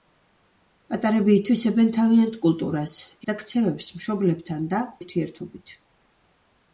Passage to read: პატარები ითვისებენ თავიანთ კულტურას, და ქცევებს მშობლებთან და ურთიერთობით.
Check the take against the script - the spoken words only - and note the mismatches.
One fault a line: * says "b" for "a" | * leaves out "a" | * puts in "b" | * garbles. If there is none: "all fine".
all fine